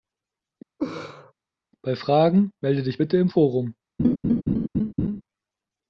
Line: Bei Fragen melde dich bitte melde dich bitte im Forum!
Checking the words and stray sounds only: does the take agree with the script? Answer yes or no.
no